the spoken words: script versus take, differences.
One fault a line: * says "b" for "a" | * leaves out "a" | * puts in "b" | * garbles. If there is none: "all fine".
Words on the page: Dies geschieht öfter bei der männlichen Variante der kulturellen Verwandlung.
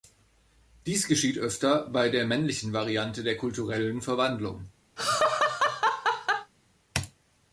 all fine